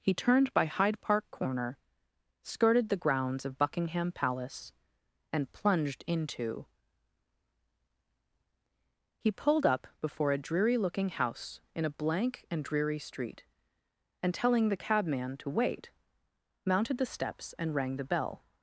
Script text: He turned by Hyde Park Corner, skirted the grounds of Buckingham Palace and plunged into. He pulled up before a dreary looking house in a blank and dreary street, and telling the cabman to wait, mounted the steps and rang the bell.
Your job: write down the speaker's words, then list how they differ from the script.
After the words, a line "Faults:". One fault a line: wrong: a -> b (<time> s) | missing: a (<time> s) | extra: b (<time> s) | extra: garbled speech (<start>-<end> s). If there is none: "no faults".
He turned by Hyde Park Corner, skirted the grounds of Buckingham Palace and plunged into. He pulled up before a dreary looking house in a blank and dreary street, and telling the cabman to wait, mounted the steps and rang the bell.
Faults:
no faults